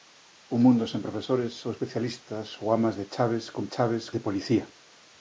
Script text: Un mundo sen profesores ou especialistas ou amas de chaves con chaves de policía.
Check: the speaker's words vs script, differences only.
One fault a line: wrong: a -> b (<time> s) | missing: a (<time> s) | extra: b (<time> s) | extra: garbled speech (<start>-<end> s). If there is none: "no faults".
no faults